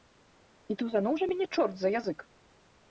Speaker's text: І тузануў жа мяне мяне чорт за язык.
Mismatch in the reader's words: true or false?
true